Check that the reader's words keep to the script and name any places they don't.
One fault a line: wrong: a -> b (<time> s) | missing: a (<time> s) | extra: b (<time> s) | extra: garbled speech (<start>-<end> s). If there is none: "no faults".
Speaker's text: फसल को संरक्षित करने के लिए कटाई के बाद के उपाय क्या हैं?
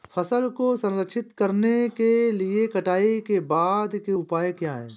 no faults